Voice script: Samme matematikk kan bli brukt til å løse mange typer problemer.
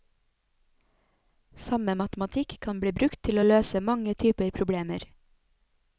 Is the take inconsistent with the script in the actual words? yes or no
no